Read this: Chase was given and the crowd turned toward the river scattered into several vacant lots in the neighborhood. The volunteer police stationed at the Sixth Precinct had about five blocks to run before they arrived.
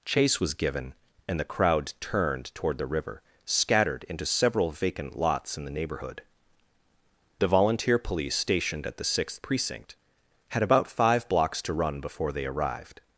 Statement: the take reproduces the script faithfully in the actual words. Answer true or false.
true